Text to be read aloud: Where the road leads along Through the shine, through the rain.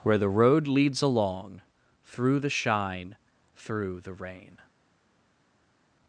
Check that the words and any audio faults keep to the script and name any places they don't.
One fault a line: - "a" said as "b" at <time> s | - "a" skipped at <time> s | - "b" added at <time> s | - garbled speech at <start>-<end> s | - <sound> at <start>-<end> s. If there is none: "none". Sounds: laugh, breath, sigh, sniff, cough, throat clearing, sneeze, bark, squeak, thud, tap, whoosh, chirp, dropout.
none